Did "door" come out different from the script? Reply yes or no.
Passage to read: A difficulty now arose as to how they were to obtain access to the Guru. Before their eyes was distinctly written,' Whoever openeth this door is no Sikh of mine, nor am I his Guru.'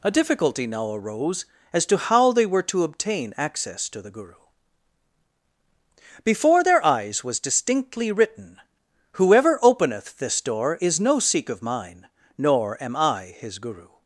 no